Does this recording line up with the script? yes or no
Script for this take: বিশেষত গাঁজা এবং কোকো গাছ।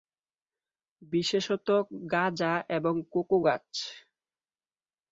yes